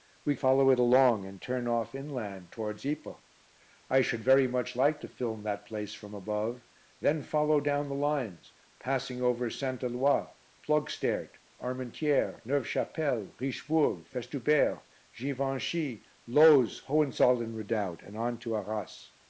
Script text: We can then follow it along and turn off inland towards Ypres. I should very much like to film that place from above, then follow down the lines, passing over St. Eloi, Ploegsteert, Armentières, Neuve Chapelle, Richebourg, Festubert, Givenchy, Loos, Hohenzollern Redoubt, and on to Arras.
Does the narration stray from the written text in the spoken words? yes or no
yes